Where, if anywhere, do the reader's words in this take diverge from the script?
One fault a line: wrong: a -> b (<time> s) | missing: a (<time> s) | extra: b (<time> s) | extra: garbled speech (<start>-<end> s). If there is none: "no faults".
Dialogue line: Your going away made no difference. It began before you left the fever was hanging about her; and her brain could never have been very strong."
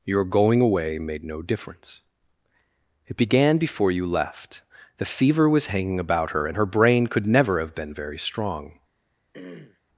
no faults